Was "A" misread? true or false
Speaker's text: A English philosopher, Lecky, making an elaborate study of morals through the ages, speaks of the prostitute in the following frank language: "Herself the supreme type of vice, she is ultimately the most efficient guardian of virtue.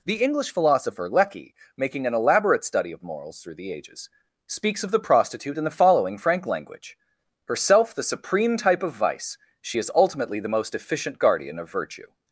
true